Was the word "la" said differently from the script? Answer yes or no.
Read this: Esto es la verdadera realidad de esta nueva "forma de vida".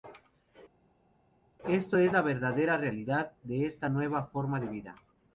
no